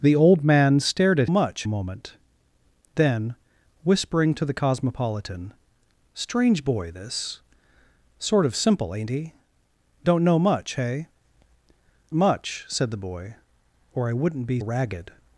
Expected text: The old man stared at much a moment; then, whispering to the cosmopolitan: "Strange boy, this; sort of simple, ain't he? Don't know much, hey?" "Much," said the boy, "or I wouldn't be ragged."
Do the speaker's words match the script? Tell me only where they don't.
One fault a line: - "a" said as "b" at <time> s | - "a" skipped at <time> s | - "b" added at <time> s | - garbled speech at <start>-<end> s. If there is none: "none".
none